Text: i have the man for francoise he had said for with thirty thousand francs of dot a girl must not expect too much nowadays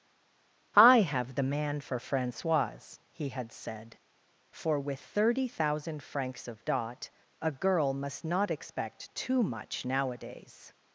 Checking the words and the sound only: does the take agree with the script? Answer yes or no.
yes